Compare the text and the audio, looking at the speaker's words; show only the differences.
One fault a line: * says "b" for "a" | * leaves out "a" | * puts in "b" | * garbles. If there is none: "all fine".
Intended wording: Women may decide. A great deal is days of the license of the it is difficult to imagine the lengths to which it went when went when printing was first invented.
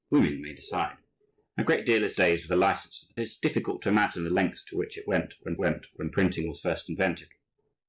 all fine